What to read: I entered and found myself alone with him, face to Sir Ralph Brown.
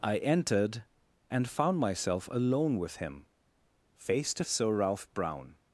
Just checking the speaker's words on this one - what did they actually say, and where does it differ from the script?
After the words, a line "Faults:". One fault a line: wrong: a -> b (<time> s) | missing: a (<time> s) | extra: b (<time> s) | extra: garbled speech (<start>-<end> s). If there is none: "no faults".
I entered and found myself alone with him, face to Sir Ralph Brown.
Faults:
no faults